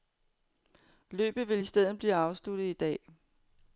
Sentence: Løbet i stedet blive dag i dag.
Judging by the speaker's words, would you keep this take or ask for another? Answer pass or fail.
fail